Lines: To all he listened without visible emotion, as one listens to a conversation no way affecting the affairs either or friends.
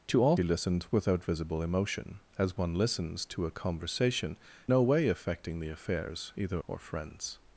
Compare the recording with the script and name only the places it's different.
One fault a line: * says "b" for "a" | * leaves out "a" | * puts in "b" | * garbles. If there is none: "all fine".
all fine